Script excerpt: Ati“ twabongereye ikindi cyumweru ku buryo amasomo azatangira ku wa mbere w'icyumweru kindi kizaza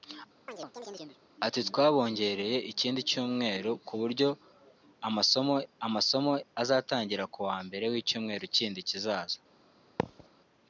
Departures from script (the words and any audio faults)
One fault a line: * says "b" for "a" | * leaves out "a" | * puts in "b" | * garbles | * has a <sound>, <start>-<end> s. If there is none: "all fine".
* has a chirp, 0.5-1.2 s
* puts in "amasomo"
* has a thud, 10.0-10.3 s